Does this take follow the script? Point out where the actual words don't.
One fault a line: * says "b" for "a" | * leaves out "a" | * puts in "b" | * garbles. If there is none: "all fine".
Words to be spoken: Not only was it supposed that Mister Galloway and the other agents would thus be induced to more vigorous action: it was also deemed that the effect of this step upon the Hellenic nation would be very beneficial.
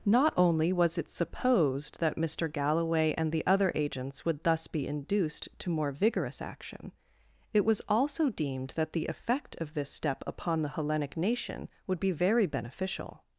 all fine